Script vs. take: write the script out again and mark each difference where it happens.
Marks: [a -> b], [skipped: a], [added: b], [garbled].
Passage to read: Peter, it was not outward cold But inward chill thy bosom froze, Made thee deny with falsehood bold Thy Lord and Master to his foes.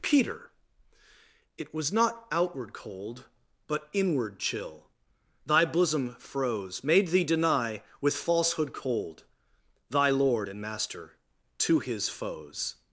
Peter, it was not outward cold But inward chill thy bosom froze, Made thee deny with falsehood [bold -> cold] Thy Lord and Master to his foes.